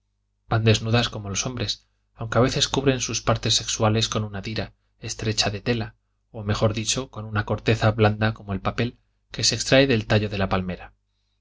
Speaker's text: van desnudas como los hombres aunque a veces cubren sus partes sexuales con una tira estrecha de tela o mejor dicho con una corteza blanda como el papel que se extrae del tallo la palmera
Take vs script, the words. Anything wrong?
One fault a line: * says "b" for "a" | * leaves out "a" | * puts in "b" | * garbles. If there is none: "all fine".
* puts in "de"